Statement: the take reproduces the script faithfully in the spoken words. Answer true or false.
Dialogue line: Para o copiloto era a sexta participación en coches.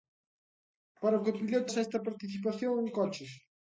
false